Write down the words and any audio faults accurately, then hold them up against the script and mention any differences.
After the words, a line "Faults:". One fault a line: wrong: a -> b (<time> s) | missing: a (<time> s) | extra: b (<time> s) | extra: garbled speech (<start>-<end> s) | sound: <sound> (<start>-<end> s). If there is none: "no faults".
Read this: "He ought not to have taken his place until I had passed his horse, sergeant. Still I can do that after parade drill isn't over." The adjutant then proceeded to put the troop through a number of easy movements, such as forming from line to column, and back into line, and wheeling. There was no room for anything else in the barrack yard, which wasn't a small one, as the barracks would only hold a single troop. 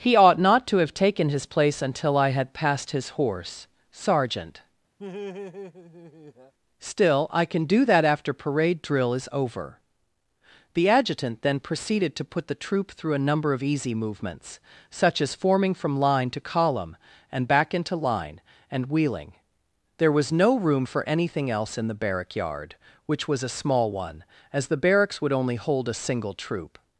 "He ought not to have taken his place until I had passed his horse, sergeant. Still I can do that after parade drill is over." The adjutant then proceeded to put the troop through a number of easy movements, such as forming from line to column, and back into line, and wheeling. There was no room for anything else in the barrack yard, which was a small one, as the barracks would only hold a single troop.
Faults:
sound: laugh (5.0-6.5 s)
wrong: isn't -> is (9.1 s)
wrong: wasn't -> was (23.3 s)